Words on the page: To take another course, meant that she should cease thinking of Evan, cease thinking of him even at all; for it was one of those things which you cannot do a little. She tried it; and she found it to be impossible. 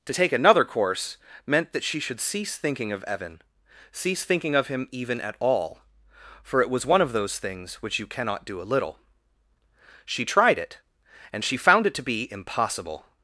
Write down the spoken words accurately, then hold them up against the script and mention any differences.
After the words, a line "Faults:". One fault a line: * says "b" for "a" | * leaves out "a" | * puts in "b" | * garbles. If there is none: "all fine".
To take another course, meant that she should cease thinking of Evan, cease thinking of him even at all; for it was one of those things which you cannot do a little. She tried it; and she found it to be impossible.
Faults:
all fine